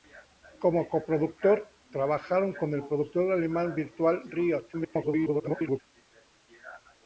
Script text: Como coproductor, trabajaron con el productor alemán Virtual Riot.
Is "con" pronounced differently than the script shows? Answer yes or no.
no